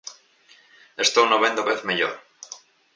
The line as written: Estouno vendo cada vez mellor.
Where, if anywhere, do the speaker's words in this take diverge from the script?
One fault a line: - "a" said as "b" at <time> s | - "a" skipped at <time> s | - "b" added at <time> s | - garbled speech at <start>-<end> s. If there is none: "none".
- "cada" skipped at 1.7 s